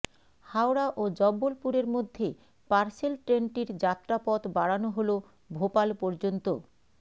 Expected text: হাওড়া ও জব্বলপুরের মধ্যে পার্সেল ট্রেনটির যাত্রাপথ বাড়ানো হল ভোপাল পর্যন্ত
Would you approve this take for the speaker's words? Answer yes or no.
yes